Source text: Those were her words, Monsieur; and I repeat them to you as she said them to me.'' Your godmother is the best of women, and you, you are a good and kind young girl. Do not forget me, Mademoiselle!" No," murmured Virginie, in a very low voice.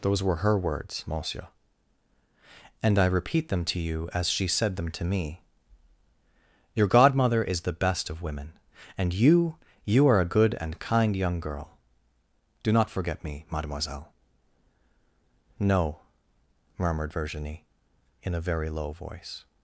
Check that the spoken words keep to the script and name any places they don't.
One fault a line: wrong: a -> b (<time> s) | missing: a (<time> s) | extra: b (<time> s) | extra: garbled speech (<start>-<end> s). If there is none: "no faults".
no faults